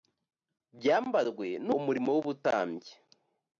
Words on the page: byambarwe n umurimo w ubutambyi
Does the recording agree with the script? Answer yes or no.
yes